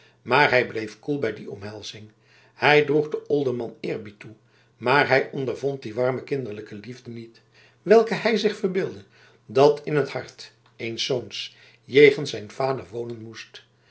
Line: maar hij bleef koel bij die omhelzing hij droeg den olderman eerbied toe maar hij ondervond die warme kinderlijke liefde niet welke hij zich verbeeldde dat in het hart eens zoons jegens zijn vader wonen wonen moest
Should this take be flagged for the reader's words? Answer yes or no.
yes